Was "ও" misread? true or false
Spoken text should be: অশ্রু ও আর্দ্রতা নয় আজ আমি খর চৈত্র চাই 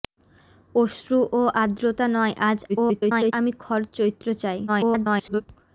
false